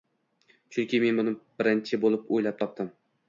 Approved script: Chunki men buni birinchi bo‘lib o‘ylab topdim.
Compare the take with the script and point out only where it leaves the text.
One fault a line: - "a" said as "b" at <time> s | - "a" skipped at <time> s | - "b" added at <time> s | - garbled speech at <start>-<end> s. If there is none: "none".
none